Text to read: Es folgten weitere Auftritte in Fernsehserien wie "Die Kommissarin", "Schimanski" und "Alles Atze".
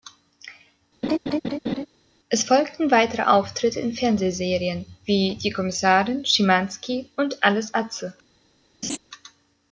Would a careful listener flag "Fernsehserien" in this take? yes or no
no